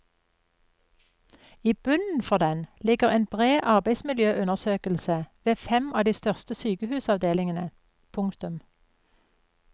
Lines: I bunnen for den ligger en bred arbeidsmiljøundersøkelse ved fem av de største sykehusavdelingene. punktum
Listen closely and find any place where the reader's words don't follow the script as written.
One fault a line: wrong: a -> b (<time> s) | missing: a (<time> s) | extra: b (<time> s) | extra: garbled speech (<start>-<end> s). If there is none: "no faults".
no faults